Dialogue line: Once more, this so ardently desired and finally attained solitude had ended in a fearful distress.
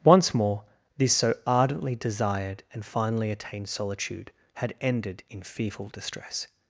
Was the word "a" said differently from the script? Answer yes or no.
yes